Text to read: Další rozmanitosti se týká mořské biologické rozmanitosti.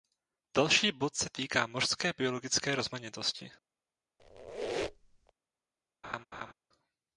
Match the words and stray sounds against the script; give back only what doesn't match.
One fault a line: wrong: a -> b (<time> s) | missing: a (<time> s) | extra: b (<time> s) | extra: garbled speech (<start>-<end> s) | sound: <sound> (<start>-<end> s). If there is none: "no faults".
wrong: rozmanitosti -> bod (0.9 s)
sound: squeak (4.2-5.3 s)
sound: laugh (6.0-6.5 s)